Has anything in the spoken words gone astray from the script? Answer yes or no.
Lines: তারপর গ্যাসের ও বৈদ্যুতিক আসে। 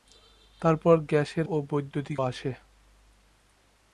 no